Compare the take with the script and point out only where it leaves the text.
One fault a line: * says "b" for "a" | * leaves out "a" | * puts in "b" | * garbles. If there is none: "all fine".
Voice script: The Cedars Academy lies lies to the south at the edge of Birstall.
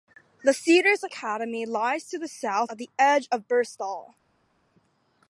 * leaves out "lies"